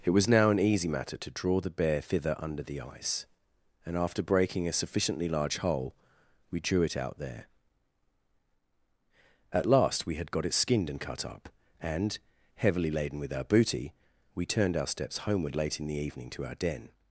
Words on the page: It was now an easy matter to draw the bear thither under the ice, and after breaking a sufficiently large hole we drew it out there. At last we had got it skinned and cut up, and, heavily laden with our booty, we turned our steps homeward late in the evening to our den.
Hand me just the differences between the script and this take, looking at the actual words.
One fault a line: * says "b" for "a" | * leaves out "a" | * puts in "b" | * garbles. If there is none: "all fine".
all fine